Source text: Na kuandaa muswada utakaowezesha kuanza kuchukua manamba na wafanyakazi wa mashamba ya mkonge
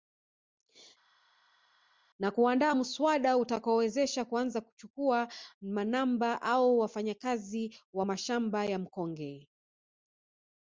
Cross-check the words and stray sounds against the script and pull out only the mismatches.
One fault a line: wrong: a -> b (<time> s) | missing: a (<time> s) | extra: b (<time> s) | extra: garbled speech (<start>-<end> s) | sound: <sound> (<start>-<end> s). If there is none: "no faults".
wrong: na -> au (6.4 s)